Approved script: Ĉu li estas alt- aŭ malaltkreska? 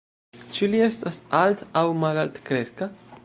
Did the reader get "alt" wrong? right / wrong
right